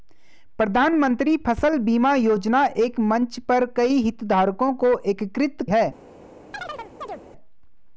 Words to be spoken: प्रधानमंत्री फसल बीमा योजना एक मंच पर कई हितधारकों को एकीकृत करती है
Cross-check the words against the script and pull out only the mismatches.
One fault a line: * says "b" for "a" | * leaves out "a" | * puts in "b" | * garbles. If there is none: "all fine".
* leaves out "करती"